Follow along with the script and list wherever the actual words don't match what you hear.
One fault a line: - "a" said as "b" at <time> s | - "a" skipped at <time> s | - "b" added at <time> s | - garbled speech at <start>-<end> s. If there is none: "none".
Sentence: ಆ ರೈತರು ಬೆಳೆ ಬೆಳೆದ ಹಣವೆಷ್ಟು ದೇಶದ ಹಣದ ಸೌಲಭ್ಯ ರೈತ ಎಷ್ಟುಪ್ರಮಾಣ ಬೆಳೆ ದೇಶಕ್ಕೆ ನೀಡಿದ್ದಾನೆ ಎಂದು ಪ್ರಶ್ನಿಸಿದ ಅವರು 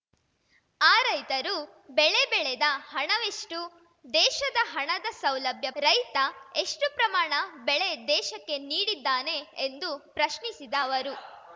none